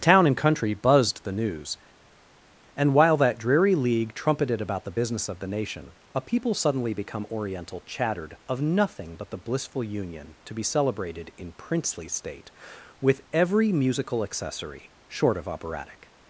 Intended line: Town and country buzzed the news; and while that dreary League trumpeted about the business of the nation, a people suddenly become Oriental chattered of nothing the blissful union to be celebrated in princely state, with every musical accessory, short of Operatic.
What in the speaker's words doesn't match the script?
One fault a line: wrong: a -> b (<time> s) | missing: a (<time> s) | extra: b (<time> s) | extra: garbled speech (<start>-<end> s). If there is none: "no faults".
extra: but (9.2 s)